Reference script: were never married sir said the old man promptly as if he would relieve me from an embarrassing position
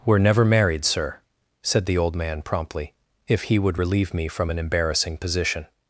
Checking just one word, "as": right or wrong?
wrong